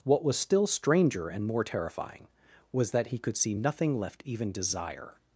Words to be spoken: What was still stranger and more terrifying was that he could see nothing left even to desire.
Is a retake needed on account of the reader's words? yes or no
yes